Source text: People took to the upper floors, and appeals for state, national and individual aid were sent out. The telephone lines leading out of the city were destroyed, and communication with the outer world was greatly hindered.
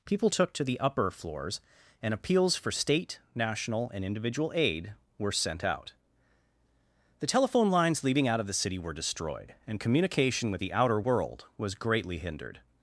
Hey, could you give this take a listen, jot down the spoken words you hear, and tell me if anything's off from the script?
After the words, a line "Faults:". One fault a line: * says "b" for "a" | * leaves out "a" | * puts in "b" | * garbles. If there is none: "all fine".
People took to the upper floors, and appeals for state, national and individual aid were sent out. The telephone lines leading out of the city were destroyed, and communication with the outer world was greatly hindered.
Faults:
all fine